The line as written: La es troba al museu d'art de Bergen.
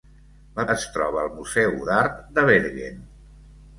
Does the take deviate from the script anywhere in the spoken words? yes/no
no